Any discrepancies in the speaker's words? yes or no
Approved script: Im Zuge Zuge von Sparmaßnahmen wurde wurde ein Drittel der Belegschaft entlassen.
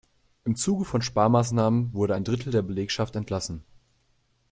yes